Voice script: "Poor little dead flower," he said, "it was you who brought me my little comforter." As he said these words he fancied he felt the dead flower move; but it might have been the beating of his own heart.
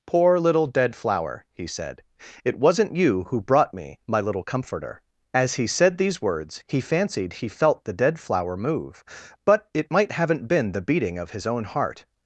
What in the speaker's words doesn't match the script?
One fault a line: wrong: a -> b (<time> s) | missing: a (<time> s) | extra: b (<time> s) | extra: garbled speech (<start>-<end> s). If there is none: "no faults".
wrong: was -> wasn't (2.6 s)
wrong: have -> haven't (10.1 s)